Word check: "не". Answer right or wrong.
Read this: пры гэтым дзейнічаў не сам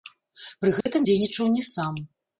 right